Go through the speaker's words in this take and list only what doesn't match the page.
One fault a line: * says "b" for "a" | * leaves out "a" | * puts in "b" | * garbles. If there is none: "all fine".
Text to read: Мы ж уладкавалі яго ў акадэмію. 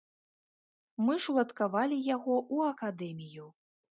all fine